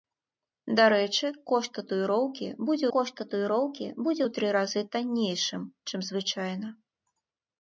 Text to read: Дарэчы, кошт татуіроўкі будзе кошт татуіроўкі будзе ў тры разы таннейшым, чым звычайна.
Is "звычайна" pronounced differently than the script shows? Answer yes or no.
no